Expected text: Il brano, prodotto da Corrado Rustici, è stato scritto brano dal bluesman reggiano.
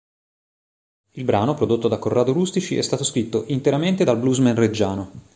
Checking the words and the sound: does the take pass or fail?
fail